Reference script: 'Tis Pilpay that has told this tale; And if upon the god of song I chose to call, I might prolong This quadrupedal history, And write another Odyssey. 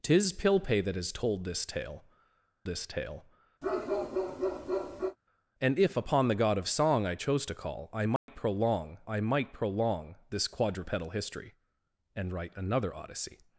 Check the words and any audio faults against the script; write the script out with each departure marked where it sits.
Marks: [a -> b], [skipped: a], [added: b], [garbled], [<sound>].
'Tis Pilpay that has told this tale; [added: this tale] [bark] And if upon the god of song I chose to call, I might [dropout] prolong [added: I might prolong] This quadrupedal history, And write another Odyssey.